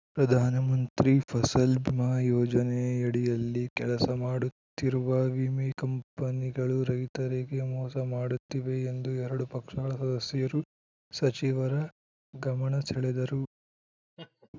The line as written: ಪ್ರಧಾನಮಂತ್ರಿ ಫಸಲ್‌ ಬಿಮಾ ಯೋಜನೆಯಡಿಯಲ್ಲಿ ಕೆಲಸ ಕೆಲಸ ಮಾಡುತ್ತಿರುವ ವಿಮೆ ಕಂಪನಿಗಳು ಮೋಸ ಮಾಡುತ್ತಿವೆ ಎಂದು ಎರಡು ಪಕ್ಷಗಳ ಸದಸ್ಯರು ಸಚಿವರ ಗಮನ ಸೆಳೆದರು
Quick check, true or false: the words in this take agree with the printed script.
false